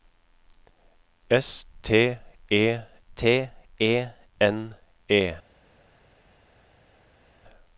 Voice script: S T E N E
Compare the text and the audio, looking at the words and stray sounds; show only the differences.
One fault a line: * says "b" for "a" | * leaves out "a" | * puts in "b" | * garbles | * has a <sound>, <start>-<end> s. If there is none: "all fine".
* puts in "T E"